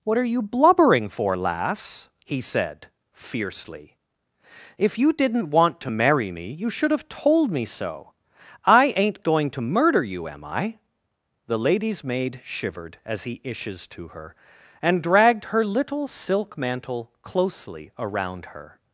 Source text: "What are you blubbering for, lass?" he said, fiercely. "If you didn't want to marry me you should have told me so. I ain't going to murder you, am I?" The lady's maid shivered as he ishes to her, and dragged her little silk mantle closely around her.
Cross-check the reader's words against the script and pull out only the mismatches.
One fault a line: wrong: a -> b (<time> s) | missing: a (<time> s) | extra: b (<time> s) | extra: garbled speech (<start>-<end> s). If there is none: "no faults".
no faults